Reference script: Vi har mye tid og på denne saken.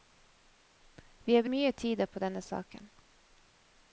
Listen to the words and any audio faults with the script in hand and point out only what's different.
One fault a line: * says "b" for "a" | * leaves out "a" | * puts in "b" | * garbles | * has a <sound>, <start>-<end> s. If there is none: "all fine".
all fine